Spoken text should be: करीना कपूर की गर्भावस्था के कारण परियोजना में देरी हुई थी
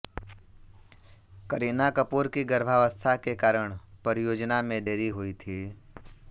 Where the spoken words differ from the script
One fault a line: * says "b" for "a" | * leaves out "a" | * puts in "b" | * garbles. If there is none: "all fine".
all fine